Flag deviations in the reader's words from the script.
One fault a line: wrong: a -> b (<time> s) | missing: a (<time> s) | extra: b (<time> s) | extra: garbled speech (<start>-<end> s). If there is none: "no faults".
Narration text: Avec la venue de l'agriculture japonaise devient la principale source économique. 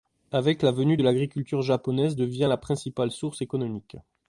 no faults